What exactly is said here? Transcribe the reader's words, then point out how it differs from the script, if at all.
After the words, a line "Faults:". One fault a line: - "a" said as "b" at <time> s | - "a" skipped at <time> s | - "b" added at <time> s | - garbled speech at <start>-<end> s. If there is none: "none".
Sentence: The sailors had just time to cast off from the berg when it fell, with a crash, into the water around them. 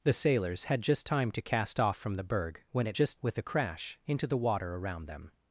The sailors had just time to cast off from the berg when it just, with a crash, into the water around them.
Faults:
- "fell" said as "just" at 2.9 s